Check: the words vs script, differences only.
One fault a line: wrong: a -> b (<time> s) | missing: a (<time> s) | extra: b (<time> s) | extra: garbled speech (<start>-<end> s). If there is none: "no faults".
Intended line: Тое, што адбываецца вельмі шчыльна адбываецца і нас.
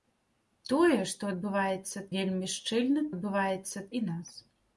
no faults